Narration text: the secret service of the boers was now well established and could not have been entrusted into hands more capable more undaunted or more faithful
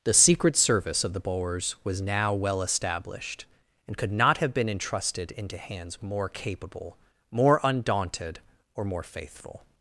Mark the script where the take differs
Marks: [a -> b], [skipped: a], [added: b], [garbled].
the secret service of the boers was now well established and could not have been entrusted into hands more capable more undaunted or more faithful